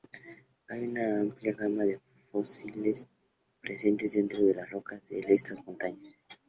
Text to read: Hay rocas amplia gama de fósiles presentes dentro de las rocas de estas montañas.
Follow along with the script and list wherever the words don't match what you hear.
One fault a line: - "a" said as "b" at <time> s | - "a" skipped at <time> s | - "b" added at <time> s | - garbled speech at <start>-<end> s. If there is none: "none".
- "rocas" said as "una" at 0.8 s